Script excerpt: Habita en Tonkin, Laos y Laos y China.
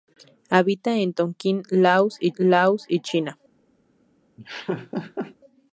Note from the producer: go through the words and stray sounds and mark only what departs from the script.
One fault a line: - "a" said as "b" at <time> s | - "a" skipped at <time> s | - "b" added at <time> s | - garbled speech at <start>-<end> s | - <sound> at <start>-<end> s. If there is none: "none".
- laugh at 4.4-5.4 s